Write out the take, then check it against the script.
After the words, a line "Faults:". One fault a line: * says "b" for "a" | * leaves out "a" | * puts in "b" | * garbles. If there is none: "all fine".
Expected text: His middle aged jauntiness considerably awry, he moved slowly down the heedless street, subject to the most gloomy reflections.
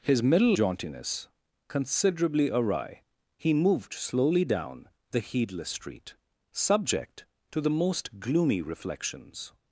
His middle jauntiness considerably awry, he moved slowly down the heedless street, subject to the most gloomy reflections.
Faults:
* leaves out "aged"